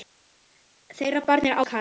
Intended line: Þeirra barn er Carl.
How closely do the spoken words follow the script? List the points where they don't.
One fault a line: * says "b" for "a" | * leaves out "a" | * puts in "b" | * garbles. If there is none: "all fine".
all fine